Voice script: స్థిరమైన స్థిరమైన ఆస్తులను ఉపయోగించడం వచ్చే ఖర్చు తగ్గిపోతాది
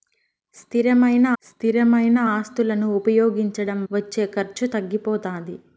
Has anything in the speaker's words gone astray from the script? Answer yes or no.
no